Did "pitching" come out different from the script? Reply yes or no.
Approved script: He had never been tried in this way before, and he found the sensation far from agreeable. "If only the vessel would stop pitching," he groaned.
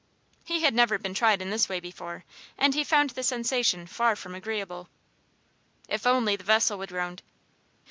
yes